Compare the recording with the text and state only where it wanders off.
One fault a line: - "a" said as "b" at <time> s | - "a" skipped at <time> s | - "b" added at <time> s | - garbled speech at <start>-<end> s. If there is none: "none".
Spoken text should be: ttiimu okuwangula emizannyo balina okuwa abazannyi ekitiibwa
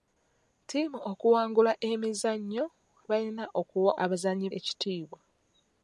none